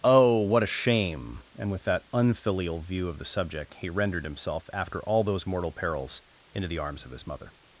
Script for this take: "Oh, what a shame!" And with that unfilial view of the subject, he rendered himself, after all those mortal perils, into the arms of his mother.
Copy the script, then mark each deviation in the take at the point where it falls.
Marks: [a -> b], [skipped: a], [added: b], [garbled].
"Oh, what a shame!" And with that unfilial view of the subject, he rendered himself, after all those mortal perils, into the arms of his mother.